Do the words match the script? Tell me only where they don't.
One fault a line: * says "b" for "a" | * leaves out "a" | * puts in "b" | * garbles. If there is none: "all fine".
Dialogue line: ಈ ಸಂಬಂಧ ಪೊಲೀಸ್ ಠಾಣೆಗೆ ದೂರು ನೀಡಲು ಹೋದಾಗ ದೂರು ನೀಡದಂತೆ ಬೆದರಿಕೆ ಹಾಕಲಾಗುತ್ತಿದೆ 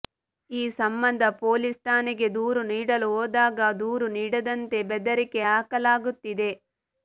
all fine